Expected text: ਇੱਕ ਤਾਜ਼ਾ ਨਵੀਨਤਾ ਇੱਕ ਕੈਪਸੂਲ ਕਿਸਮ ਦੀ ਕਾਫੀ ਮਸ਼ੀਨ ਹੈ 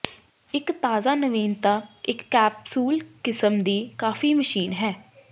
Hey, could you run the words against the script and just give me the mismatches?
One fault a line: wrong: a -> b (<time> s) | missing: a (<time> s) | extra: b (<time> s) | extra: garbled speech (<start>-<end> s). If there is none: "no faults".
no faults